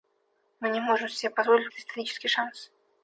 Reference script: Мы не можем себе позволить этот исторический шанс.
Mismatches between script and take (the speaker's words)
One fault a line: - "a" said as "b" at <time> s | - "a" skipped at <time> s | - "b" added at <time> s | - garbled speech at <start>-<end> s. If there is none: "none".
none